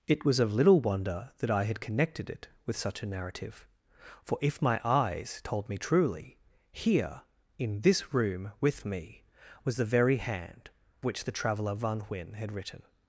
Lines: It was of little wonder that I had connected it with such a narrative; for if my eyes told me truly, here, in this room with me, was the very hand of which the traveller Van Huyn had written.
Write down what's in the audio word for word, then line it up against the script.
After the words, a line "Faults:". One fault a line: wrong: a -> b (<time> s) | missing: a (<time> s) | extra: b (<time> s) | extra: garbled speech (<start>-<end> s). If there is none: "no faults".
It was of little wonder that I had connected it with such a narrative; for if my eyes told me truly, here, in this room with me, was the very hand which the traveller Van Huyn had written.
Faults:
missing: of (10.7 s)